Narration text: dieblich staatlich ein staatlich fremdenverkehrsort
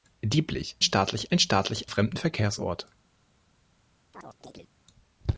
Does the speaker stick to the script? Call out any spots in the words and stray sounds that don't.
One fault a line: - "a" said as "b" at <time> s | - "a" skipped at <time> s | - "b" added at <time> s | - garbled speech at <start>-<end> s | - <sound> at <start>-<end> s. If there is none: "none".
- chirp at 4.1-4.7 s